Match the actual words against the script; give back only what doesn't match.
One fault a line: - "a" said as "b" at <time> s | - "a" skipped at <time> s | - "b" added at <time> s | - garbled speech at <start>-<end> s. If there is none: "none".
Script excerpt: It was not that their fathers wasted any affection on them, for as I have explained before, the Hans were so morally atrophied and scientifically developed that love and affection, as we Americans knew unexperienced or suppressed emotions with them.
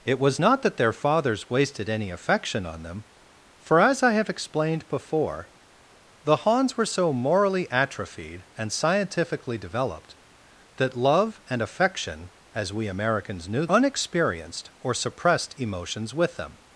none